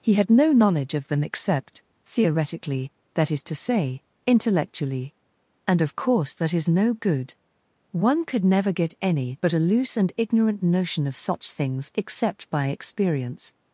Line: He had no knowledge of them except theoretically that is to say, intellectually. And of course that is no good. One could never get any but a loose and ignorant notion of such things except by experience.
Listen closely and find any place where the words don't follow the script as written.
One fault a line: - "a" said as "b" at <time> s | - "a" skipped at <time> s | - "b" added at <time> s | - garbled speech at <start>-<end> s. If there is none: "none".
none